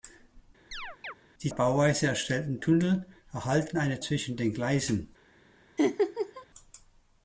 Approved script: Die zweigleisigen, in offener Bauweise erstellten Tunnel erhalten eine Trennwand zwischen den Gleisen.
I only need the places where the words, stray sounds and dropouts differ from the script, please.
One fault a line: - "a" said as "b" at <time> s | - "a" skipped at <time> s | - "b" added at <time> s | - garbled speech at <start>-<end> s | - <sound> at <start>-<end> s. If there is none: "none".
- chirp at 0.7-1.1 s
- "zweigleisigen in offener" skipped at 1.5 s
- "Trennwand" skipped at 4.0 s
- laugh at 5.8-6.5 s